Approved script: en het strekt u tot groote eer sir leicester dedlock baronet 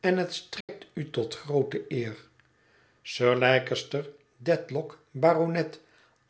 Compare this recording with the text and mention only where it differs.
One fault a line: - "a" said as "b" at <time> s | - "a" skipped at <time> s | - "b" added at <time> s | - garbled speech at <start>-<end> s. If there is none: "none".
none